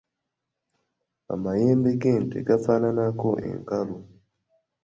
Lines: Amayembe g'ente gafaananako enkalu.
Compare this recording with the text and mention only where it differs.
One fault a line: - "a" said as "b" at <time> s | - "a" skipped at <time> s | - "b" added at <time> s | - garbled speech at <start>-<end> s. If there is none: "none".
none